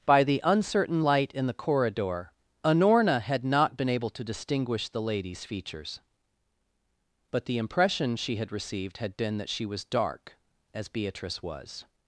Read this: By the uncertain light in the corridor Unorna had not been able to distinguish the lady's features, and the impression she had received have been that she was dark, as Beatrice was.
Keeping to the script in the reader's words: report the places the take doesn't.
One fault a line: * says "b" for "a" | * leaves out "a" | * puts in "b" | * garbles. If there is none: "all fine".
* says "but" for "and"
* says "had" for "have"